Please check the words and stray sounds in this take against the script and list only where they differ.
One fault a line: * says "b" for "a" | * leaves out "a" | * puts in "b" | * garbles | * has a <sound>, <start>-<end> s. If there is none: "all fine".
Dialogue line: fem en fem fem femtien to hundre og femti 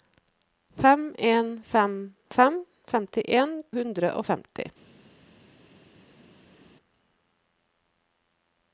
* leaves out "to"